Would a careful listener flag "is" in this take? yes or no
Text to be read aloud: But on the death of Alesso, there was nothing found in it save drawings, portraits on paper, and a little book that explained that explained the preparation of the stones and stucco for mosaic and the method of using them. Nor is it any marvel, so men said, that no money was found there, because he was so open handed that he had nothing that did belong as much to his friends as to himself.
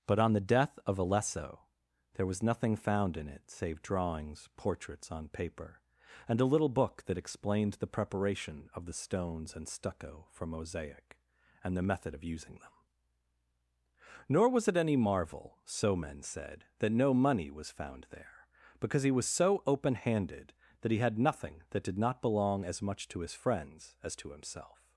yes